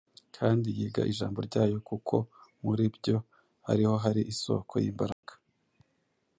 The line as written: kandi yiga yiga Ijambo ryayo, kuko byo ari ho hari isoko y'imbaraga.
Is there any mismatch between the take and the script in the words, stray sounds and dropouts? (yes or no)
yes